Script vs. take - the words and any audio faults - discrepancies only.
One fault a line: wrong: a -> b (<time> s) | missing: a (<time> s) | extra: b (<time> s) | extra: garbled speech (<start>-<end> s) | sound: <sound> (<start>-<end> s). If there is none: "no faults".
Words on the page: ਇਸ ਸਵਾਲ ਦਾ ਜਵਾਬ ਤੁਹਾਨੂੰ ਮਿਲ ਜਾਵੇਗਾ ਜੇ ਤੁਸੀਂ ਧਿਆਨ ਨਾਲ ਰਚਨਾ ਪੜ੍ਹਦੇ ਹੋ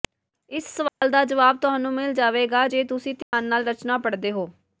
sound: dropout (0.9-1.0 s)
sound: dropout (3.2-3.3 s)